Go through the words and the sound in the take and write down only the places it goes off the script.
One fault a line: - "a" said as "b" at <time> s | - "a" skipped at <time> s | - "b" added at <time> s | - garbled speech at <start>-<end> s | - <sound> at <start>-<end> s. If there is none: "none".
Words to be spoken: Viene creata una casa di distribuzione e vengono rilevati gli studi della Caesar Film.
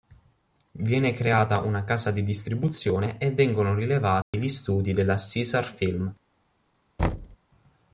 - dropout at 4.2-4.3 s
- thud at 7.0-7.4 s